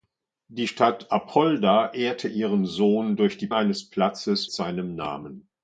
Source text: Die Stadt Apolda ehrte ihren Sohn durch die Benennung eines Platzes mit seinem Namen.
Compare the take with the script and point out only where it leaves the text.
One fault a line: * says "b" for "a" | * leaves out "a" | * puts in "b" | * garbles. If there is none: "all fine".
* leaves out "Benennung"
* leaves out "mit"